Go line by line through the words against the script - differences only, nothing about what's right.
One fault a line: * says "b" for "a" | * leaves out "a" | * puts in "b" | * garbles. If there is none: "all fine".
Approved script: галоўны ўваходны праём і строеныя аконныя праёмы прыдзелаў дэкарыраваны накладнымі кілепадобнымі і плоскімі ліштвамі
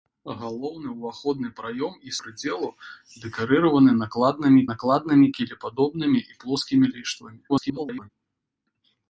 * leaves out "строеныя аконныя праёмы"
* puts in "накладнымі"
* garbles